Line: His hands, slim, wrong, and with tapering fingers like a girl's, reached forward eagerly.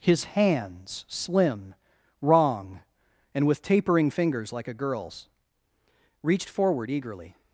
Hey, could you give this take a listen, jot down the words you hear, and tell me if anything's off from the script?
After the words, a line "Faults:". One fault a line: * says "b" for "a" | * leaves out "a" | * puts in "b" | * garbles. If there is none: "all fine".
His hands, slim, wrong, and with tapering fingers like a girl's, reached forward eagerly.
Faults:
all fine